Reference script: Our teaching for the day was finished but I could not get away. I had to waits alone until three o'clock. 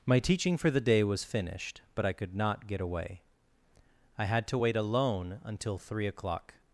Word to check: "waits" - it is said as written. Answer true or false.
false